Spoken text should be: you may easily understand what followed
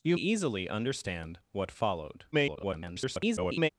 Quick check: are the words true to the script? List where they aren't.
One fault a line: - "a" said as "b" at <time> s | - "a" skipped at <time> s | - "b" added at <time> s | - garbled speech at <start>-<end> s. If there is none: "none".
- "may" skipped at 0.2 s
- garbled speech at 2.3-3.7 s